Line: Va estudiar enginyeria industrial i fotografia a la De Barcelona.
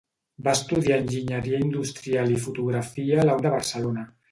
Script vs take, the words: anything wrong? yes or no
no